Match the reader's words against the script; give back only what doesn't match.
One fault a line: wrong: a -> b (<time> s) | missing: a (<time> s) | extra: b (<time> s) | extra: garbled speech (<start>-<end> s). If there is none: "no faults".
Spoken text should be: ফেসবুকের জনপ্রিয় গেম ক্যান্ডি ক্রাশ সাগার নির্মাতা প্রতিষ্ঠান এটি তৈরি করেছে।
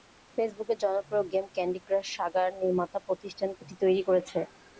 no faults